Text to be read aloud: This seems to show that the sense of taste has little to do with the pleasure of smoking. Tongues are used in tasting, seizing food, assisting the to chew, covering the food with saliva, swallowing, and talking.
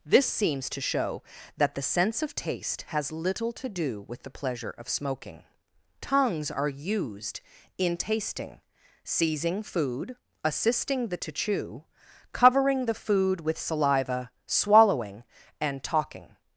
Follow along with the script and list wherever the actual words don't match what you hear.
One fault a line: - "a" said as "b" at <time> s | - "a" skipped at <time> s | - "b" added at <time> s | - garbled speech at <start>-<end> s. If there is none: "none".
none